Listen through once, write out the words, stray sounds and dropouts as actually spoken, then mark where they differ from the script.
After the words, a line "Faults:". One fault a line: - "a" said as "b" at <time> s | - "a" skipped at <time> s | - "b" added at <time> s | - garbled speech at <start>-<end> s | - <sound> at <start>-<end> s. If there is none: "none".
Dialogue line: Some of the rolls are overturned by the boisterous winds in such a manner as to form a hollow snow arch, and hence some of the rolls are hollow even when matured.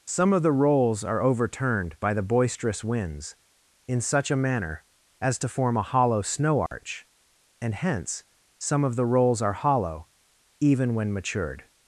Some of the rolls are overturned by the boisterous winds in such a manner as to form a hollow snow arch, and hence some of the rolls are hollow even when matured.
Faults:
- dropout at 6.7-6.7 s